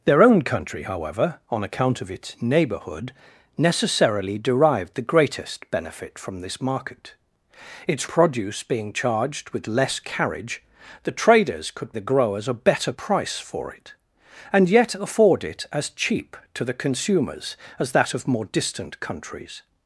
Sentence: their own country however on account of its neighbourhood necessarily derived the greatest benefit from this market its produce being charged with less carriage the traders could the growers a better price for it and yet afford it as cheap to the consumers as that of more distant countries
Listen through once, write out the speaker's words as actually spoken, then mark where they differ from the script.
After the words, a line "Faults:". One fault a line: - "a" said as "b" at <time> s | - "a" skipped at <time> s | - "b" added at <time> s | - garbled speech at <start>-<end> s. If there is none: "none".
their own country however on account of its neighbourhood necessarily derived the greatest benefit from this market its produce being charged with less carriage the traders could the growers a better price for it and yet afford it as cheap to the consumers as that of more distant countries
Faults:
none